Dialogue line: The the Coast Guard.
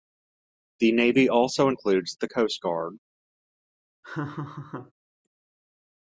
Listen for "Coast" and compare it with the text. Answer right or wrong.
right